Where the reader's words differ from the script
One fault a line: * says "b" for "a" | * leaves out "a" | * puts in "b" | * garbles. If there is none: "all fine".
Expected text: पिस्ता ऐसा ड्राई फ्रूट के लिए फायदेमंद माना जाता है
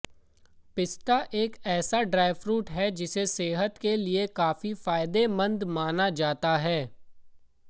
* puts in "एक"
* puts in "है जिसे सेहत"
* puts in "काफी"